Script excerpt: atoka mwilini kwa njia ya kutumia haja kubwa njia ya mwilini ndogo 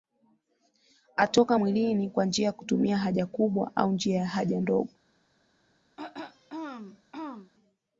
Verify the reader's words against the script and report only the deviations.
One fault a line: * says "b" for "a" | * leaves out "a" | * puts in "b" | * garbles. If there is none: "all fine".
* puts in "au"
* says "haja" for "mwilini"